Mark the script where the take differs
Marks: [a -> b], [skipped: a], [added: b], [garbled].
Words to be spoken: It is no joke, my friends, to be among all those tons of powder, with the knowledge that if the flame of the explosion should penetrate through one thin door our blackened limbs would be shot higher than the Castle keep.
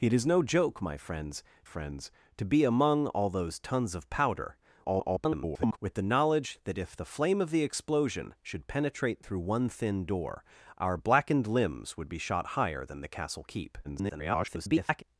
It is no joke, my friends, [added: friends] to be among all those tons of powder, [garbled] with the knowledge that if the flame of the explosion should penetrate through one thin door our blackened limbs would be shot higher than the Castle keep. [garbled]